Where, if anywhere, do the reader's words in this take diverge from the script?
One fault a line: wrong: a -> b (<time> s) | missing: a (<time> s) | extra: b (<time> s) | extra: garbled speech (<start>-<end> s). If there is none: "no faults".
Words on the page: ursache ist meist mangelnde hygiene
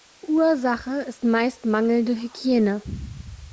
no faults